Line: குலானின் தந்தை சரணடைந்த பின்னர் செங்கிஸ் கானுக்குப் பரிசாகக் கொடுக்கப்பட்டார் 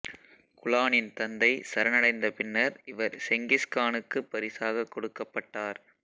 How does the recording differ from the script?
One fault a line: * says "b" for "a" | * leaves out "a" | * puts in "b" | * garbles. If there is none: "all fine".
* puts in "இவர்"